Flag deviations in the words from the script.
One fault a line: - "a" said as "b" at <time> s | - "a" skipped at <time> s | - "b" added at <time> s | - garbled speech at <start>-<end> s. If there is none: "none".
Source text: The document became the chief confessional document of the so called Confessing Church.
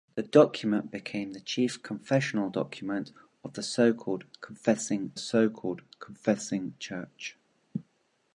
- "so called Confessing" added at 5.2 s